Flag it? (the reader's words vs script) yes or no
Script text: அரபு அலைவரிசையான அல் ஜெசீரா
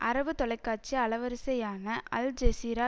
yes